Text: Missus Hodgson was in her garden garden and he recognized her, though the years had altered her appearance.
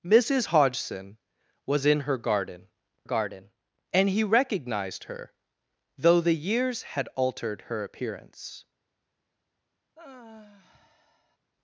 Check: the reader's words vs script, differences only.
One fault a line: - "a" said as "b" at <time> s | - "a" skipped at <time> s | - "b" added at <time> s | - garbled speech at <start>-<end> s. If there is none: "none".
none